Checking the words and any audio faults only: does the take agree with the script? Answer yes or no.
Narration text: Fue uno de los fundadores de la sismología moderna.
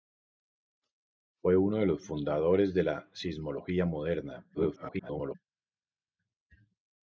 no